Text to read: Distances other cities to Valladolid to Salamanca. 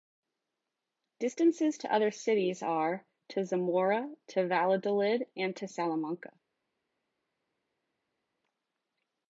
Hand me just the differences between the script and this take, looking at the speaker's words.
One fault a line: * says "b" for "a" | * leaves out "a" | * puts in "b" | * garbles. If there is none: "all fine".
* puts in "to"
* puts in "are"
* puts in "Zamora to"
* puts in "and"